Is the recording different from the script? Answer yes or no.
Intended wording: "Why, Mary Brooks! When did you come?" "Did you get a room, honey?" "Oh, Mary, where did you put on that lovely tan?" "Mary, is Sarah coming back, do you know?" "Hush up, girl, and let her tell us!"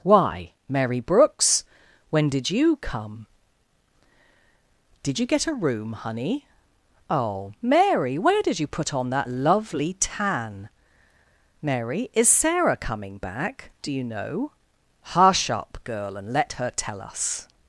no